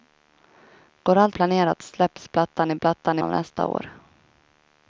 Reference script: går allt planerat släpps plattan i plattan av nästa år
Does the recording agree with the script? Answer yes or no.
yes